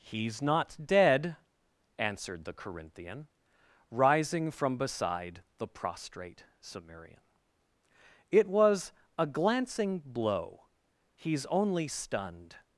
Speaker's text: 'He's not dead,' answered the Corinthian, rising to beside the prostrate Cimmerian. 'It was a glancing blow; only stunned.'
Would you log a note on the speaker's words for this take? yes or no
yes